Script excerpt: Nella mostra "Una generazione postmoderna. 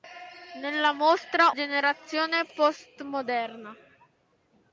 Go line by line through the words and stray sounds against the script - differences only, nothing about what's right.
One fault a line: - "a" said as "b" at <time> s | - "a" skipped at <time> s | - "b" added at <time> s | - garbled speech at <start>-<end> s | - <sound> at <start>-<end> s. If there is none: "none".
- "Una" skipped at 1.5 s